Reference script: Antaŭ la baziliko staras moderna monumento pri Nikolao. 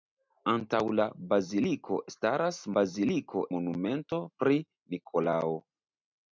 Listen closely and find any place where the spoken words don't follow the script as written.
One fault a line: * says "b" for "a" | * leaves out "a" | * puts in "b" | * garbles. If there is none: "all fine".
* says "baziliko" for "moderna"